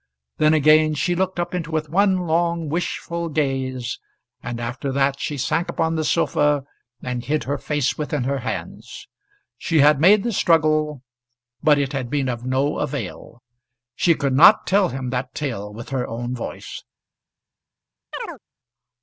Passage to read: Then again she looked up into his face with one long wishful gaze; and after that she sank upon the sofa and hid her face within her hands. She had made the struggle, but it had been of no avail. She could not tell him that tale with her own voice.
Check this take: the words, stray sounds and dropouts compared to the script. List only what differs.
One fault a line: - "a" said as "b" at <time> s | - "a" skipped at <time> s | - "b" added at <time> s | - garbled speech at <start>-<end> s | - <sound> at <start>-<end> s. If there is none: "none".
- "his face" skipped at 1.7 s
- chirp at 18.1-18.4 s